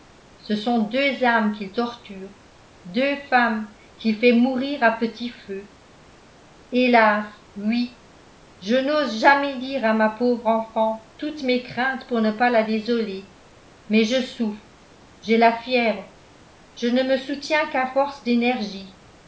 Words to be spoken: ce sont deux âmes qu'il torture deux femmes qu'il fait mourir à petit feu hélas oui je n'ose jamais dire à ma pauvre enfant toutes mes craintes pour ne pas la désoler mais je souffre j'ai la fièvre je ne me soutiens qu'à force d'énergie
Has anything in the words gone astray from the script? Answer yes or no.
no